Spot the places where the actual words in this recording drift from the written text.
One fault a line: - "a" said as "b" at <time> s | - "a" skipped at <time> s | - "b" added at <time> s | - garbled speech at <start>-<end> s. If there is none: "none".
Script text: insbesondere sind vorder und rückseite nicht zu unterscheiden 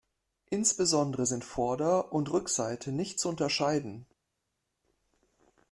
none